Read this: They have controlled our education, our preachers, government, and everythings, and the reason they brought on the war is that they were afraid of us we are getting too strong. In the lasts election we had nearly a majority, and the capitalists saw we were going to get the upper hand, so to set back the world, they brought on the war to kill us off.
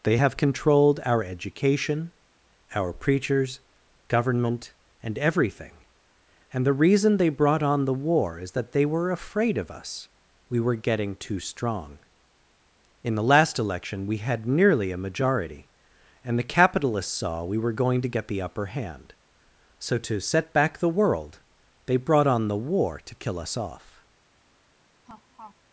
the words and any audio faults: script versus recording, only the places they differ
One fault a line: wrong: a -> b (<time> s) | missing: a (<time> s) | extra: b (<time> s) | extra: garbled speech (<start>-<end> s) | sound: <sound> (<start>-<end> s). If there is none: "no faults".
wrong: everythings -> everything (5.2 s)
wrong: are -> were (10.6 s)
wrong: lasts -> last (13.2 s)
sound: laugh (25.0-25.6 s)